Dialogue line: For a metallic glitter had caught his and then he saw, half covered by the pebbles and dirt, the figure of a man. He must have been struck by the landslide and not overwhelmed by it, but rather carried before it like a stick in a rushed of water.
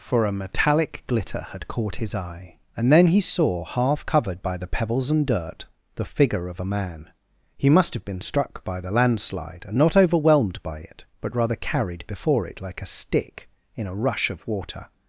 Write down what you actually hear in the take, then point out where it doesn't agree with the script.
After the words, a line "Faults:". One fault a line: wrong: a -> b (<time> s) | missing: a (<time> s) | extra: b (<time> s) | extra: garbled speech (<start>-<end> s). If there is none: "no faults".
For a metallic glitter had caught his eye, and then he saw, half covered by the pebbles and dirt, the figure of a man. He must have been struck by the landslide and not overwhelmed by it, but rather carried before it like a stick in a rush of water.
Faults:
extra: eye (2.1 s)
wrong: rushed -> rush (14.0 s)